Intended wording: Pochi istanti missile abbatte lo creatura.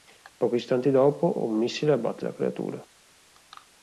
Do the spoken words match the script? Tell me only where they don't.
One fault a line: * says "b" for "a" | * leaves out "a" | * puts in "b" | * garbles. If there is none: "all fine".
* puts in "dopo un"
* says "la" for "lo"